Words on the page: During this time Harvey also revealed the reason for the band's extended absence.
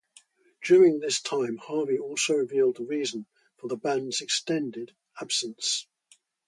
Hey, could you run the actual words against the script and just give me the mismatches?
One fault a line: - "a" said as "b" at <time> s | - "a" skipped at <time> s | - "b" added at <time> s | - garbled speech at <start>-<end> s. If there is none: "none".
none